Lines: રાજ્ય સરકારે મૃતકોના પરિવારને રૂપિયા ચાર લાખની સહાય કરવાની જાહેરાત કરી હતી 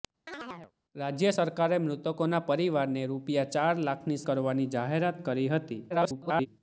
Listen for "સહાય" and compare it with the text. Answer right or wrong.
wrong